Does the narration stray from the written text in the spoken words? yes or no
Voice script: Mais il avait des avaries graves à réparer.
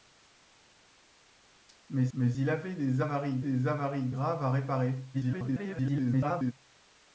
yes